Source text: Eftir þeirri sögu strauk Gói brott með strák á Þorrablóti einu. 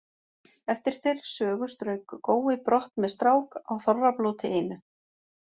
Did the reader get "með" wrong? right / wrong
right